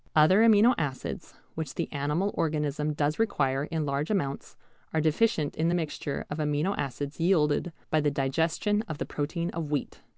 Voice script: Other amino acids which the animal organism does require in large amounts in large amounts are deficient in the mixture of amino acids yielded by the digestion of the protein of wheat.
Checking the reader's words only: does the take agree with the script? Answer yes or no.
no